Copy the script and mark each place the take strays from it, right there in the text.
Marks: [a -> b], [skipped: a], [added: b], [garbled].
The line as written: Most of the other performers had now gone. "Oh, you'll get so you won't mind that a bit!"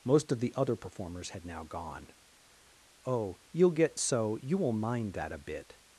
Most of the other performers had now gone. "Oh, you'll get so you [won't -> will] mind that a bit!"